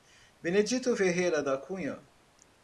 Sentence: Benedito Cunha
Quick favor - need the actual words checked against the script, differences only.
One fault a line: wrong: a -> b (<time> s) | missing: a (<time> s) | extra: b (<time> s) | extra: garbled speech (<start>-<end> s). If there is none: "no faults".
extra: Ferreira da (0.9 s)